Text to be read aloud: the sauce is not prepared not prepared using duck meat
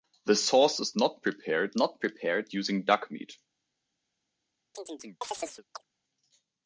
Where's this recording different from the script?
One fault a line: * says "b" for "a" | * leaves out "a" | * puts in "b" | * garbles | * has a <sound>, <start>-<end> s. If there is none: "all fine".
* has a chirp, 4.7-5.8 s